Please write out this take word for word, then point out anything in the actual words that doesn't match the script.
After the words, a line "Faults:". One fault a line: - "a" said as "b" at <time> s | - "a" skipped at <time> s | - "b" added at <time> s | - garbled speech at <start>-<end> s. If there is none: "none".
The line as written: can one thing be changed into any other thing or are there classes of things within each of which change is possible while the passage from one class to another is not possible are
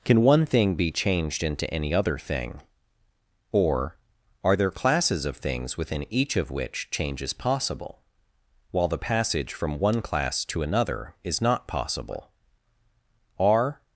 can one thing be changed into any other thing or are there classes of things within each of which change is possible while the passage from one class to another is not possible are
Faults:
none